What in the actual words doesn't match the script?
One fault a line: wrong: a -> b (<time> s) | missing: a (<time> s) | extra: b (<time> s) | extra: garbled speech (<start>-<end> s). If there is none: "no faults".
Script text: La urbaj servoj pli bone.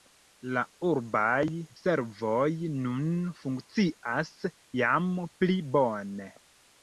extra: nun funkcias jam (2.9 s)